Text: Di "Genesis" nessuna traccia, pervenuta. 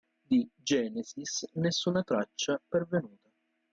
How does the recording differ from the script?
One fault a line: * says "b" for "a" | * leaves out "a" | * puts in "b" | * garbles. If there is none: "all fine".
all fine